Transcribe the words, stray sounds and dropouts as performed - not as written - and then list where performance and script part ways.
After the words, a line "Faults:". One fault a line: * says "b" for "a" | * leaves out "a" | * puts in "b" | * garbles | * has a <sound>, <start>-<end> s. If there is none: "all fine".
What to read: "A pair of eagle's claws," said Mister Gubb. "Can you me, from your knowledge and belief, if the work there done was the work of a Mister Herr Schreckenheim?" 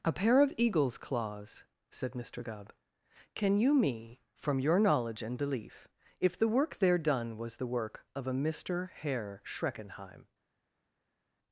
"A pair of eagle's claws," said Mister Gubb. "Can you me, from your knowledge and belief, if the work there done was the work of a Mister Herr Schreckenheim?"
Faults:
all fine